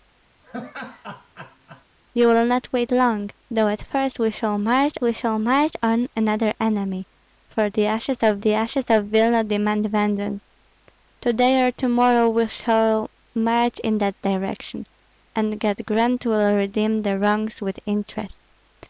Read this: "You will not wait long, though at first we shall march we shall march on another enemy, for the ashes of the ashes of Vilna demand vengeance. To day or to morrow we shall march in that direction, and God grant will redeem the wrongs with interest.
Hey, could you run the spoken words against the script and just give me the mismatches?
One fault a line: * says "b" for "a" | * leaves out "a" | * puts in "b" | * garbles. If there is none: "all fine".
all fine